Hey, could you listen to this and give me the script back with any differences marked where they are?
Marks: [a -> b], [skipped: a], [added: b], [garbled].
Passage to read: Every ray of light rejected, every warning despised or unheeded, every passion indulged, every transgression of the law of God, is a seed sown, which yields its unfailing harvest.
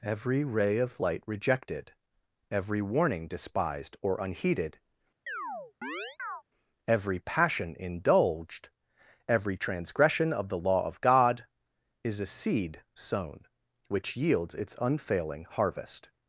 Every ray of light rejected, every warning despised or unheeded, every passion indulged, every transgression of the law of God, is a seed sown, which yields its unfailing harvest.